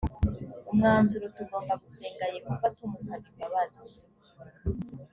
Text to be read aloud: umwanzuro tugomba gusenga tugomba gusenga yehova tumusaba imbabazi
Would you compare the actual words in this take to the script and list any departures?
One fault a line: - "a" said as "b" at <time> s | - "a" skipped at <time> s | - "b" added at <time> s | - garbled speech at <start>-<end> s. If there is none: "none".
- "tugomba gusenga" skipped at 2.2 s